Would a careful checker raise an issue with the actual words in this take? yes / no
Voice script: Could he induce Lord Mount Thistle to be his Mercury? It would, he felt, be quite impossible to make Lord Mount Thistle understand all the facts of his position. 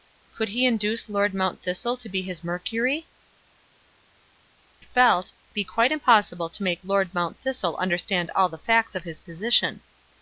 yes